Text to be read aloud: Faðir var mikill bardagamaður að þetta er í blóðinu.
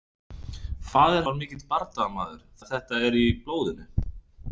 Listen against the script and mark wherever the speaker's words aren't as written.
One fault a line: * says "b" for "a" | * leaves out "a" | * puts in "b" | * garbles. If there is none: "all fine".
all fine